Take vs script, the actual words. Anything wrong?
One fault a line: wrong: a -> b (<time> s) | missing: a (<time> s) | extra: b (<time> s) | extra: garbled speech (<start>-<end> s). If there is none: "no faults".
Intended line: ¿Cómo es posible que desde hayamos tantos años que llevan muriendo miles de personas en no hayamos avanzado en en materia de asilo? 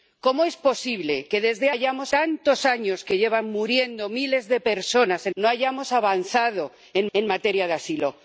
no faults